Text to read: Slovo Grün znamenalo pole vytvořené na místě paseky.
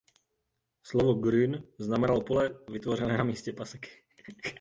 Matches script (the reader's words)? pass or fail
pass